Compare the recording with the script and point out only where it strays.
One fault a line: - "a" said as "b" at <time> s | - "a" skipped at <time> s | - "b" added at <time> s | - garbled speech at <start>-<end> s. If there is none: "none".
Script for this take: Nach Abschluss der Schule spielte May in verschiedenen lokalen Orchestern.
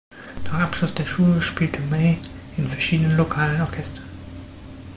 none